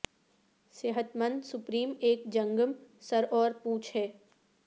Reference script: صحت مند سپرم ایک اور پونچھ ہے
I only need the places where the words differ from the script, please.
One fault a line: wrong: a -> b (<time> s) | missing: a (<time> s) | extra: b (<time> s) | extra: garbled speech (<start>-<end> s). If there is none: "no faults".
extra: جنگم سر (2.3 s)